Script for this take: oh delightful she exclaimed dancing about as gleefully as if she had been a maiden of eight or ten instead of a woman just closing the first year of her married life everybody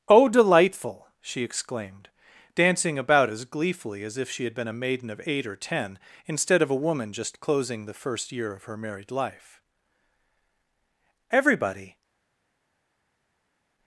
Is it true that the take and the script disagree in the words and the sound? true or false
false